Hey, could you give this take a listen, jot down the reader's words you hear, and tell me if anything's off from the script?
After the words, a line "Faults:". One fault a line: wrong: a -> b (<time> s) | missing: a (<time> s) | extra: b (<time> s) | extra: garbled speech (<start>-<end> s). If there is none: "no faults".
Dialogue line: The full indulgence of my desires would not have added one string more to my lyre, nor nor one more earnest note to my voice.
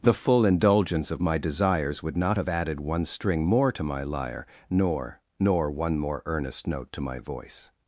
The full indulgence of my desires would not have added one string more to my lyre, nor nor one more earnest note to my voice.
Faults:
no faults